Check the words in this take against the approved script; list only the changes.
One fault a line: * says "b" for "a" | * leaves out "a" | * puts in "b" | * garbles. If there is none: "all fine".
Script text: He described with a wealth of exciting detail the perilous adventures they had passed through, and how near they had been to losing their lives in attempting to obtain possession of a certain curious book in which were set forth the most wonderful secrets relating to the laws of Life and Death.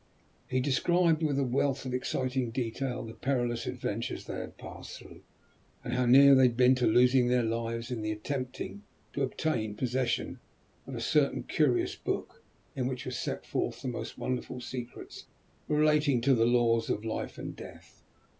all fine